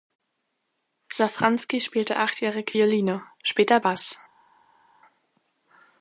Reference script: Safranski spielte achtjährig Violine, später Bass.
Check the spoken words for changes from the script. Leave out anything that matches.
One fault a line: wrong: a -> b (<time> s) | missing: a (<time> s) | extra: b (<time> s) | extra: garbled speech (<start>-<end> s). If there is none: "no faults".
no faults